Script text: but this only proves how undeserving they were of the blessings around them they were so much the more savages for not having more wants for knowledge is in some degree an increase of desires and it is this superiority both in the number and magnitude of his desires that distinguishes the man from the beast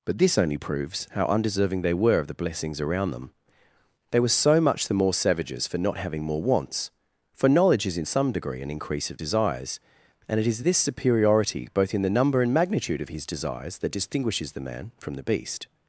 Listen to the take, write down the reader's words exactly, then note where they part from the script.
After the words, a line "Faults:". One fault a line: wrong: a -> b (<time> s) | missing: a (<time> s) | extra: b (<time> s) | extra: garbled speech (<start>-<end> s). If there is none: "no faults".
but this only proves how undeserving they were of the blessings around them they were so much the more savages for not having more wants for knowledge is in some degree an increase of desires and it is this superiority both in the number and magnitude of his desires that distinguishes the man from the beast
Faults:
no faults